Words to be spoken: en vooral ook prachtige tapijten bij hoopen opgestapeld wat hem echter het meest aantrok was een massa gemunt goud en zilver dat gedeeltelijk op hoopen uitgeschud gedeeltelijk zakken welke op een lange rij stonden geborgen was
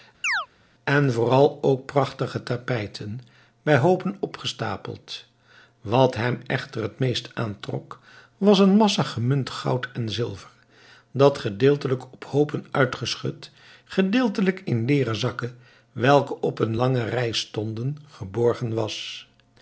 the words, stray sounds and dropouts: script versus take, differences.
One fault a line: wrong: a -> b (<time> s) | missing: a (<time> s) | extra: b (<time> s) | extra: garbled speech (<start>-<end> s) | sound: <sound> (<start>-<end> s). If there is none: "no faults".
sound: chirp (0.2-0.5 s)
extra: in leeren (14.6 s)